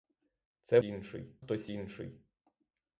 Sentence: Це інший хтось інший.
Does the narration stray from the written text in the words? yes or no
no